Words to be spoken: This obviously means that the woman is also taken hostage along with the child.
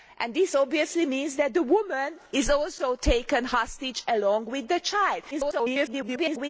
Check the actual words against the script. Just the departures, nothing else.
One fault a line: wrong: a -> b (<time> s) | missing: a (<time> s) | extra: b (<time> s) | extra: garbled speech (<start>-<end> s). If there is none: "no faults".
extra: garbled speech (5.3-6.5 s)